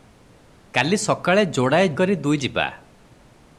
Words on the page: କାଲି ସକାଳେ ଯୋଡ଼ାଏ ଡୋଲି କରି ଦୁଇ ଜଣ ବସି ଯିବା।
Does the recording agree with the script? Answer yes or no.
no